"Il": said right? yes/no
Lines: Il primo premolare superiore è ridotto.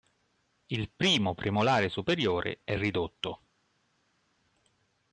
yes